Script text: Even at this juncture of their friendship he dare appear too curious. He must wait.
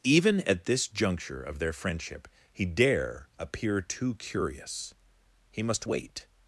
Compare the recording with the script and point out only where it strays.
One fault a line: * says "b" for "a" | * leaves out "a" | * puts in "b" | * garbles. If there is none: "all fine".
all fine